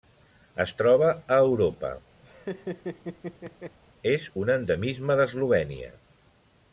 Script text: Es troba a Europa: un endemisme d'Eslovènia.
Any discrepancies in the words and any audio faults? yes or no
yes